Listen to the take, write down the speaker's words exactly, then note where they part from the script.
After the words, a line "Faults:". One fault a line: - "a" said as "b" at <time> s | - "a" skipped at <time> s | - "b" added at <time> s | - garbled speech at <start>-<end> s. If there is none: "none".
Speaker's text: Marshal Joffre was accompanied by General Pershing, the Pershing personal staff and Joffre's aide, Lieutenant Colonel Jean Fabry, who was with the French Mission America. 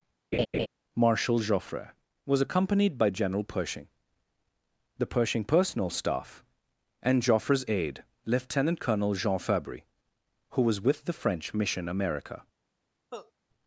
Marshal Joffre was accompanied by General Pershing, the Pershing personal staff and Joffre's aide, Lieutenant Colonel Jean Fabry, who was with the French Mission America.
Faults:
none